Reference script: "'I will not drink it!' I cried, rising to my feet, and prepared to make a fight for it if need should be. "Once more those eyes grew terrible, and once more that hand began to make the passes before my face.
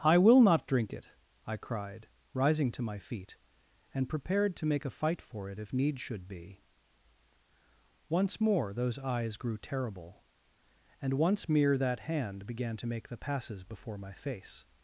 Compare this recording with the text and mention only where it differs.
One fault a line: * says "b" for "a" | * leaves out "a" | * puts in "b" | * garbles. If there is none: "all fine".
* says "mere" for "more"